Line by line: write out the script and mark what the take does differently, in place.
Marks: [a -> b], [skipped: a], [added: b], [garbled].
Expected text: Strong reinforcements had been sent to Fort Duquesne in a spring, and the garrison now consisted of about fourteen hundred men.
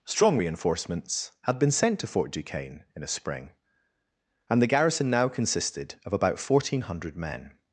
Strong reinforcements had been sent to Fort Duquesne in a spring, and the garrison now consisted of about fourteen hundred men.